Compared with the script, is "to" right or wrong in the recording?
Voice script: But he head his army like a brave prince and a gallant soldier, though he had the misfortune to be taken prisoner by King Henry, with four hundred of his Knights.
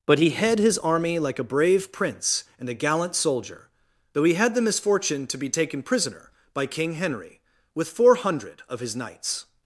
right